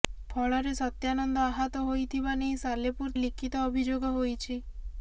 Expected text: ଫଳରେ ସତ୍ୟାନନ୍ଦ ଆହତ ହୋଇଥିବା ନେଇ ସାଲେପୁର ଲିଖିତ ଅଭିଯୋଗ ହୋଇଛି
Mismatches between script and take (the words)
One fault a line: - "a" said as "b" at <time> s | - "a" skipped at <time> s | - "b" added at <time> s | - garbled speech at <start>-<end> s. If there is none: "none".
none